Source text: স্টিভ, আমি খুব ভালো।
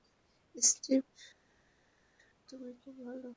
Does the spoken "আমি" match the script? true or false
false